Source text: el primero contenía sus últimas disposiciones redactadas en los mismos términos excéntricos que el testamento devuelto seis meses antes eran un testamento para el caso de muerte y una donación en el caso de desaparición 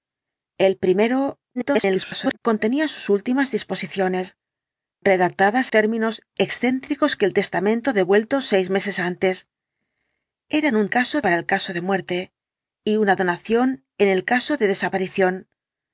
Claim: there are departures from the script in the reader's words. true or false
true